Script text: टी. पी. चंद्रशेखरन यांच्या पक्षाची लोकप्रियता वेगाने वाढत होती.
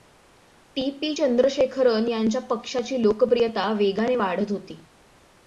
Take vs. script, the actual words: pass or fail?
pass